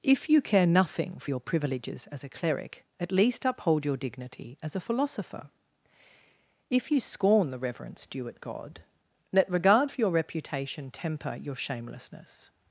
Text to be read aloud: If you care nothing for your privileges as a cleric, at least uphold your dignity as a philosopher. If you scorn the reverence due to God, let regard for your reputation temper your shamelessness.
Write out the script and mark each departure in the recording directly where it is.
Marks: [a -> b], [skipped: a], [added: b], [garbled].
If you care nothing for your privileges as a cleric, at least uphold your dignity as a philosopher. If you scorn the reverence due [to -> at] God, let regard for your reputation temper your shamelessness.